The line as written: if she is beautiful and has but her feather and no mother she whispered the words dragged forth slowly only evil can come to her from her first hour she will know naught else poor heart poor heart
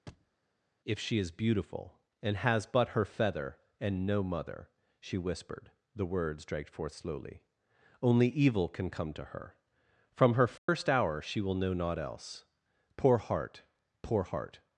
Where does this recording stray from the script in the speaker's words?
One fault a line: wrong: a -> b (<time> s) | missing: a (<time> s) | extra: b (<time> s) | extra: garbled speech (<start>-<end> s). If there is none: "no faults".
no faults